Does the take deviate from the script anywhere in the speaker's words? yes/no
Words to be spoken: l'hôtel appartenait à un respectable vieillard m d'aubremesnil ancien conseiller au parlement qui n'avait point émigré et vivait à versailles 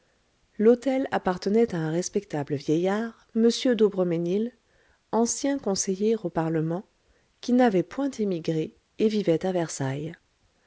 no